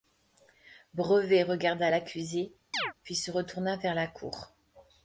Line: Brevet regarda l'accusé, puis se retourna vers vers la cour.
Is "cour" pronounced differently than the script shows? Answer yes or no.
no